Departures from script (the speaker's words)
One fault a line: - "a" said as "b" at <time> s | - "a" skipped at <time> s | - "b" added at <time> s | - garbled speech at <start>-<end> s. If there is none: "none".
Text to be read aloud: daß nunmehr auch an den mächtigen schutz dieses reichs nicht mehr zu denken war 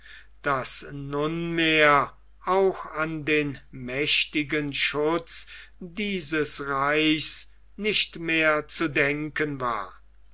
none